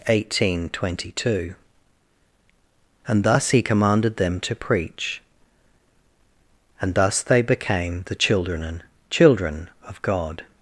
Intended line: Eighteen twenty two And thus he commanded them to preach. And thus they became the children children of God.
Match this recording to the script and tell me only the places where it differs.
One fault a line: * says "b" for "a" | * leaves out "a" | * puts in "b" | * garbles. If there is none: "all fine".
all fine